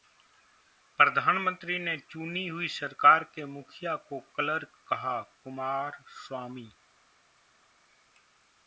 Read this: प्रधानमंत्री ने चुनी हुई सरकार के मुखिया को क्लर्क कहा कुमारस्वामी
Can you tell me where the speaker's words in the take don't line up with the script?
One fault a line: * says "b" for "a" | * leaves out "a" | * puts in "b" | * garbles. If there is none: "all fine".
all fine